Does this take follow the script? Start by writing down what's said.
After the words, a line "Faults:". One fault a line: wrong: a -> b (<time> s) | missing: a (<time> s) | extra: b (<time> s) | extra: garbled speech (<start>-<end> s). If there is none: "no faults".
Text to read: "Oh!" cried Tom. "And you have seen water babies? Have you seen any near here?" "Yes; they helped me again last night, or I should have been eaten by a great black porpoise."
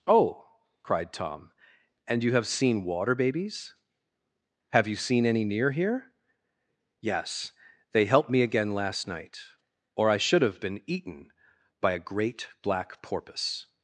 "Oh!" cried Tom. "And you have seen water babies? Have you seen any near here?" "Yes; they helped me again last night, or I should have been eaten by a great black porpoise."
Faults:
no faults